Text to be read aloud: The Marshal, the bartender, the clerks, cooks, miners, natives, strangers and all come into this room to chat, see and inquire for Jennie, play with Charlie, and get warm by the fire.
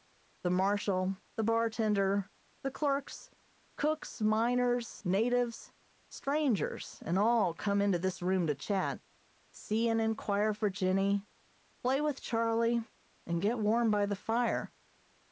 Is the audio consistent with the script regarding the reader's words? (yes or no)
yes